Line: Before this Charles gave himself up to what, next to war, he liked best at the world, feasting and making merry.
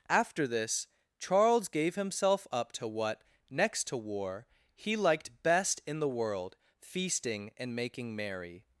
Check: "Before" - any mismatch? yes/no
yes